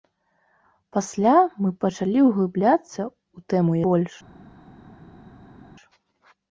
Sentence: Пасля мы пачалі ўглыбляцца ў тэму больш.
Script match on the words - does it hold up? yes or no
yes